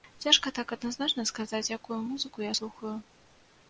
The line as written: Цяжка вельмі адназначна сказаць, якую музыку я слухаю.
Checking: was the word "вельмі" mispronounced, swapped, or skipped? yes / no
yes